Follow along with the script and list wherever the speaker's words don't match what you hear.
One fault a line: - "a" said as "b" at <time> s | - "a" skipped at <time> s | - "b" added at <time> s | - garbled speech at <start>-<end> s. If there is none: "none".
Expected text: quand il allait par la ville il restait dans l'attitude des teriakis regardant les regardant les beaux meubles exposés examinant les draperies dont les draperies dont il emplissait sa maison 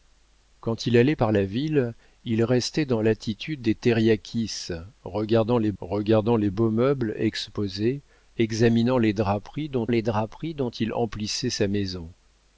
none